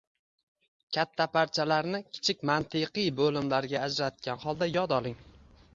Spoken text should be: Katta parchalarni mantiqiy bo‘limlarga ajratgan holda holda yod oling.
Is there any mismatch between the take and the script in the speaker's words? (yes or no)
yes